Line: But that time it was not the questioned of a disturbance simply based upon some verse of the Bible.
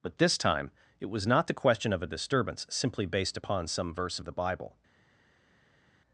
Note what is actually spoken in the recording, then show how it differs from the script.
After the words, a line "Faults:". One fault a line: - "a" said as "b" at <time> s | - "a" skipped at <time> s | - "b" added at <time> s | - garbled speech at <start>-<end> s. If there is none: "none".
But this time it was not the question of a disturbance simply based upon some verse of the Bible.
Faults:
- "that" said as "this" at 0.2 s
- "questioned" said as "question" at 1.5 s